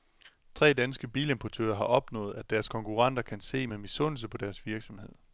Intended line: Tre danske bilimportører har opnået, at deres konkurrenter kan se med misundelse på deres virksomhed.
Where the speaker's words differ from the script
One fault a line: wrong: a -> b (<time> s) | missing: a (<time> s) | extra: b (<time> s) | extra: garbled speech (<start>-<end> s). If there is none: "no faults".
no faults